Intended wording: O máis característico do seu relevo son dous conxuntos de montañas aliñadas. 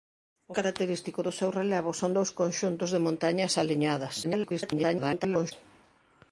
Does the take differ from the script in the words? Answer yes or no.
yes